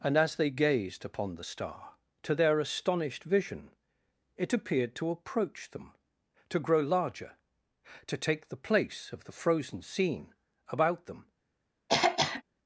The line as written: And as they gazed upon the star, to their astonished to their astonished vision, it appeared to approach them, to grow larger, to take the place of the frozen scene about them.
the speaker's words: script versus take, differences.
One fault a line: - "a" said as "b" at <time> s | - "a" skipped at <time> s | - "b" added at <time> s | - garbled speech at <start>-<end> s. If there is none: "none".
- "to their astonished" skipped at 3.2 s